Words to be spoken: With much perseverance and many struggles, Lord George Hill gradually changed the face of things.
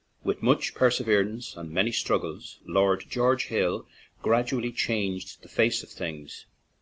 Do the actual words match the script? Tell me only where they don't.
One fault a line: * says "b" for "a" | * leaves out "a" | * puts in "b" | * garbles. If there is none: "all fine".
all fine